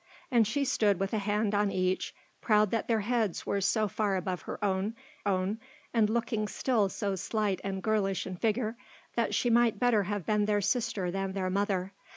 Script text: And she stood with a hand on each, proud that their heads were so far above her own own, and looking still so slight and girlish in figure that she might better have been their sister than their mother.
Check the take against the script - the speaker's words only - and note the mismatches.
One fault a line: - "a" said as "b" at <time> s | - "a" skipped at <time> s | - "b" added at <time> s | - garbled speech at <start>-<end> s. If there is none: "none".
none